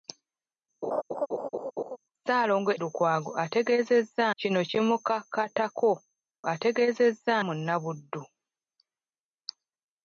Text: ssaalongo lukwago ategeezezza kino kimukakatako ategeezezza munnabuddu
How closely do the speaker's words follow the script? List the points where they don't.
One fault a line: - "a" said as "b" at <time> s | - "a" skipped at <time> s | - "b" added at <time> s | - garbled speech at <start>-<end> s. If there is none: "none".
none